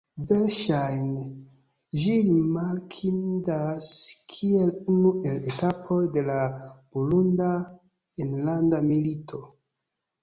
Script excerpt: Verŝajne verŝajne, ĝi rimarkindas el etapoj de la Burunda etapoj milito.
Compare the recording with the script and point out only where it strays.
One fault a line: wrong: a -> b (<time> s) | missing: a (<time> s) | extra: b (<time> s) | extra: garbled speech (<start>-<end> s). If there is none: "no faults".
missing: verŝajne (1.2 s)
extra: kiel unu (4.3 s)
wrong: etapoj -> enlanda (8.3 s)